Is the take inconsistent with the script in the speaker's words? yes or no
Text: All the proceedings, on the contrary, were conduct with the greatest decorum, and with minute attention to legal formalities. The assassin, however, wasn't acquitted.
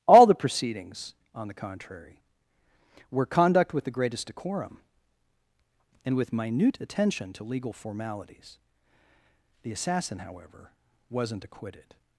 no